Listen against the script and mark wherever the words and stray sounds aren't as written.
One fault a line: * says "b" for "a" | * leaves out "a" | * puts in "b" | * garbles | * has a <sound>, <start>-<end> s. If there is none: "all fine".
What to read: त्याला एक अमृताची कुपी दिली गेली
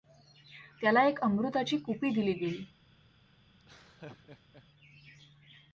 * has a laugh, 3.6-4.7 s